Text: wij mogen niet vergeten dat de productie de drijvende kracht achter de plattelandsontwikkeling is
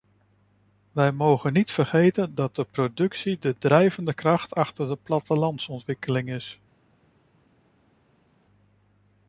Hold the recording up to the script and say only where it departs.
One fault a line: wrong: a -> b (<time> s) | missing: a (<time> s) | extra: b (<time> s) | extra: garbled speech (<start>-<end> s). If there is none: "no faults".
no faults